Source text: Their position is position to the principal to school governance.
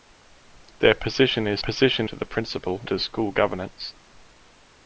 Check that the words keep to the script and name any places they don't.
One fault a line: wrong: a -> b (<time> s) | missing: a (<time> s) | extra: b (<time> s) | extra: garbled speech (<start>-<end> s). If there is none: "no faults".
no faults